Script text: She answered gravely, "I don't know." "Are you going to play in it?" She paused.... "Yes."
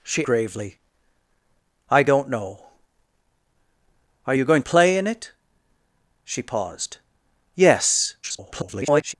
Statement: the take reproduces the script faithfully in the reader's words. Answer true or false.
false